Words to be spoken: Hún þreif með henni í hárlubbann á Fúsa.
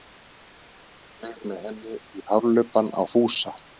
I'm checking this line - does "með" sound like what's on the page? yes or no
yes